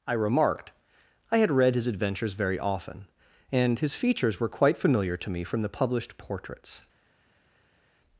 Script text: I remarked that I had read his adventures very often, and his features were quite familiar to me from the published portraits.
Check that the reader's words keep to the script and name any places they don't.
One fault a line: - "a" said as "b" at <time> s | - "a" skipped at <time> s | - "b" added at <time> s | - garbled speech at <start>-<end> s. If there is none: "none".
- "that" skipped at 0.7 s